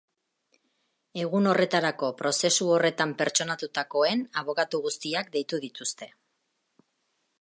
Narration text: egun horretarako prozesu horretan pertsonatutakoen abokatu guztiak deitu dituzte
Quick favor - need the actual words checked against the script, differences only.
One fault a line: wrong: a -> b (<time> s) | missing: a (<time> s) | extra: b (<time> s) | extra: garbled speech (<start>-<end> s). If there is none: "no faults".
no faults